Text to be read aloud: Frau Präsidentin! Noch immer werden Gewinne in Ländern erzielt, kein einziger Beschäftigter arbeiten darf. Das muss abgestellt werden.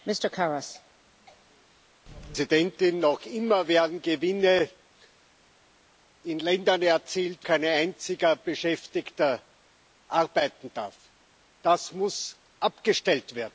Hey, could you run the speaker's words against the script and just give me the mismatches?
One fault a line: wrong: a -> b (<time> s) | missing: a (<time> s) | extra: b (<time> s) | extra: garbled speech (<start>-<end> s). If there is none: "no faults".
no faults